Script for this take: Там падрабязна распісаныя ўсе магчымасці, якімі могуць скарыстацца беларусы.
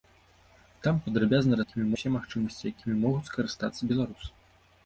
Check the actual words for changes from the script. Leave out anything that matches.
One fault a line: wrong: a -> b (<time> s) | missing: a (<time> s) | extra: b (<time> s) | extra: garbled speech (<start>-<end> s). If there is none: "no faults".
wrong: распісаныя -> якімі (1.6 s)